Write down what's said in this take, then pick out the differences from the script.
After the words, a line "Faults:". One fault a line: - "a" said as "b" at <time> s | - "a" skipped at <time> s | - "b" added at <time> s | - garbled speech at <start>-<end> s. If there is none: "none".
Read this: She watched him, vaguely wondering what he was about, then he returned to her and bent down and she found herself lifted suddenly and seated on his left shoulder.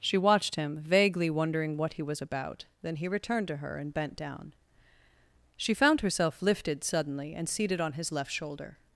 She watched him, vaguely wondering what he was about, then he returned to her and bent down she found herself lifted suddenly and seated on his left shoulder.
Faults:
- "and" skipped at 4.5 s